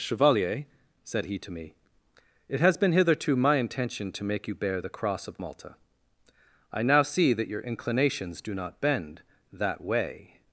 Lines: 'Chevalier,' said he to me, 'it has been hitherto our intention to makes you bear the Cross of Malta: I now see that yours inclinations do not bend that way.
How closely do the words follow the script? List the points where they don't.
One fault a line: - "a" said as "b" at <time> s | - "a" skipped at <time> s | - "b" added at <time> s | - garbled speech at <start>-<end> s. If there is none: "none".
- "our" said as "my" at 3.4 s
- "makes" said as "make" at 4.2 s
- "yours" said as "your" at 7.5 s